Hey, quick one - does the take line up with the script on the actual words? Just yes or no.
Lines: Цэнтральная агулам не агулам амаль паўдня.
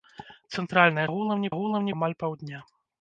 yes